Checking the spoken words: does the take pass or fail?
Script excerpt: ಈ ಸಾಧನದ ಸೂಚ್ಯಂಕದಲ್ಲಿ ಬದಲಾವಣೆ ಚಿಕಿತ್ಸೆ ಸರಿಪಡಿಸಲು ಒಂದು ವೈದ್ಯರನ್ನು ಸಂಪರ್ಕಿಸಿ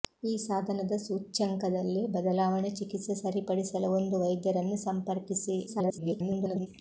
fail